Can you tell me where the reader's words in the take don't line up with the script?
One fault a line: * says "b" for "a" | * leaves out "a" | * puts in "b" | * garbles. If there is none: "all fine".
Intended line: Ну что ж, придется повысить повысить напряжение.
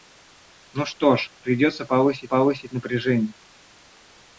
all fine